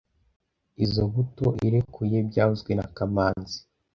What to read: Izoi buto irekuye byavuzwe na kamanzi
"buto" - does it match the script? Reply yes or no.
yes